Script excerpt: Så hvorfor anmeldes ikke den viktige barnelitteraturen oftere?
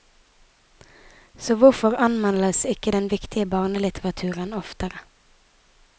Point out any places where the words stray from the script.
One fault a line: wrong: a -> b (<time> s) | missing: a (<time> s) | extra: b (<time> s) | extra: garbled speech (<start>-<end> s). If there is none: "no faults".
no faults